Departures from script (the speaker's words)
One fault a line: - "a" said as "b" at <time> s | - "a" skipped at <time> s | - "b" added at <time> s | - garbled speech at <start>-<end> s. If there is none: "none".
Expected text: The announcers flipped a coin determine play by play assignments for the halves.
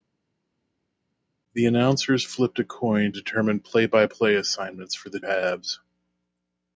none